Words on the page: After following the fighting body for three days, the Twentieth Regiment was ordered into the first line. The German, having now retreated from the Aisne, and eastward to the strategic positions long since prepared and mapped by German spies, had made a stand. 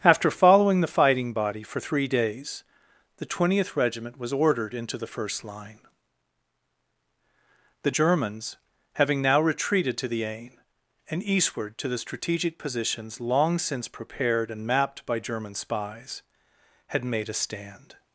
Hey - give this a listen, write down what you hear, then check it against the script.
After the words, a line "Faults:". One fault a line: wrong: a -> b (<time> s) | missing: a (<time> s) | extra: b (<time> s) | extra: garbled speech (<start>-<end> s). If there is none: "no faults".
After following the fighting body for three days, the Twentieth Regiment was ordered into the first line. The Germans, having now retreated to the Aisne, and eastward to the strategic positions long since prepared and mapped by German spies, had made a stand.
Faults:
wrong: German -> Germans (7.9 s)
wrong: from -> to (10.0 s)